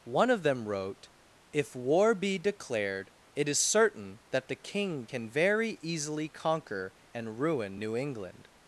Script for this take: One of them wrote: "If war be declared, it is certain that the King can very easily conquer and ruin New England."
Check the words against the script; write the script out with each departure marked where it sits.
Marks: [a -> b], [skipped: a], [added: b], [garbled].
One of them wrote: "If war be declared, it is certain that the King can very easily conquer and ruin New England."